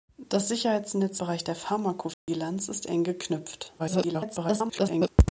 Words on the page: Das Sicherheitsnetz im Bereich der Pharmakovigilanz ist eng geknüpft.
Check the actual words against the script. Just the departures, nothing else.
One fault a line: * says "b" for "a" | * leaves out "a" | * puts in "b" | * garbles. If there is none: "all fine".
* leaves out "im"
* garbles